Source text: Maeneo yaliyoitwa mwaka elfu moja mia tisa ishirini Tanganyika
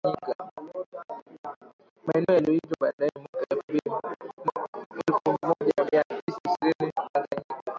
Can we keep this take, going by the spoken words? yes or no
no